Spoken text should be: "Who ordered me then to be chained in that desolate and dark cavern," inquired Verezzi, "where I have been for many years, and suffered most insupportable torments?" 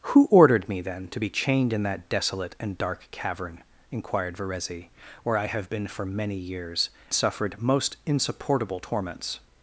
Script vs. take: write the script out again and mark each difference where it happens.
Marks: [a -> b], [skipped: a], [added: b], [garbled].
"Who ordered me then to be chained in that desolate and dark cavern," inquired Verezzi, "where I have been for many years, [skipped: and] suffered most insupportable torments?"